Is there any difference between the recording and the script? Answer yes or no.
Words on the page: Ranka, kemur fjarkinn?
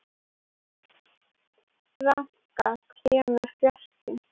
no